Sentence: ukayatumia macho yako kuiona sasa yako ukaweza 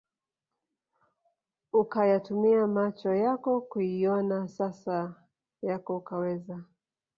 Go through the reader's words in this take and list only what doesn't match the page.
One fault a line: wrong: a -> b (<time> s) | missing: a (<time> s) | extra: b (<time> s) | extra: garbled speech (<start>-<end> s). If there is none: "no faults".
no faults